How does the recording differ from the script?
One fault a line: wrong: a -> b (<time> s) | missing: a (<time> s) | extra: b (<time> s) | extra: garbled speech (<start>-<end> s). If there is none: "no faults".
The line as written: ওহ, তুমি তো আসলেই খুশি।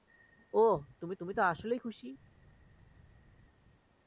extra: তুমি (1.2 s)